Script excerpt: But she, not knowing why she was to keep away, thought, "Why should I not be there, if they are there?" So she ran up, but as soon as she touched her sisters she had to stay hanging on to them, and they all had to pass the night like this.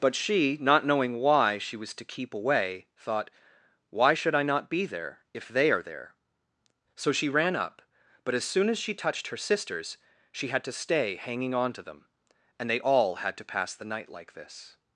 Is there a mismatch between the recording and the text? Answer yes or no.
no